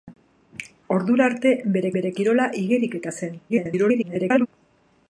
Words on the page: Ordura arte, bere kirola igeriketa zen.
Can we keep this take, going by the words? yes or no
no